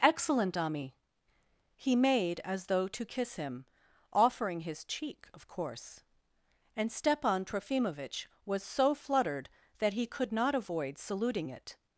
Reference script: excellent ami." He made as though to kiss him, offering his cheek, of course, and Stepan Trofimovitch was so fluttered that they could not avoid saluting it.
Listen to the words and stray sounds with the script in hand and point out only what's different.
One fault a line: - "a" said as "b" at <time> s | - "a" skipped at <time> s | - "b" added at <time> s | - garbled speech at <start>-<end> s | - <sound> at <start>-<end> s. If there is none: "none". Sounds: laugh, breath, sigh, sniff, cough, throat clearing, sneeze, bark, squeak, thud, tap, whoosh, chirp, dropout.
- "they" said as "he" at 9.9 s